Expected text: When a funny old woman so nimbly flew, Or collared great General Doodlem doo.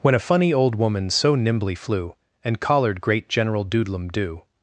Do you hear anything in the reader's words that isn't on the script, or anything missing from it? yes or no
yes